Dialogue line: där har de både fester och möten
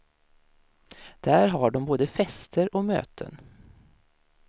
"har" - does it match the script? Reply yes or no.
yes